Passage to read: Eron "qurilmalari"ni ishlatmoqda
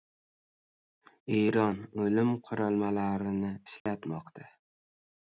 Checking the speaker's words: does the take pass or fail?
fail